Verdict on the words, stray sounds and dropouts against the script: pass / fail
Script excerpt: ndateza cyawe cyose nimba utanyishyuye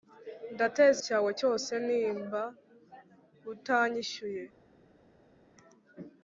pass